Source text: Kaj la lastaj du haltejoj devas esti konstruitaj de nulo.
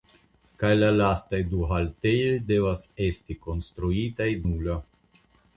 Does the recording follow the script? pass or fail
fail